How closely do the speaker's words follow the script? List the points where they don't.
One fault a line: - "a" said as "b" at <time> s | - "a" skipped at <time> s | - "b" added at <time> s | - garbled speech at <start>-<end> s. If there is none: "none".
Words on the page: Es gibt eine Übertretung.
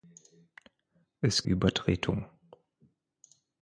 - "gibt eine" skipped at 1.4 s